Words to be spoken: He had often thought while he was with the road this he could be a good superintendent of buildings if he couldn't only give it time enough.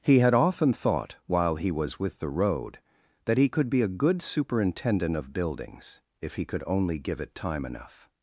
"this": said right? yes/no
no